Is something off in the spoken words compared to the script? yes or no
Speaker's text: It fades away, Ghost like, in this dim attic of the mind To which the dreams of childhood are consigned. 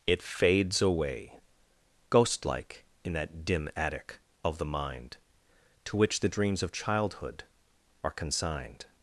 yes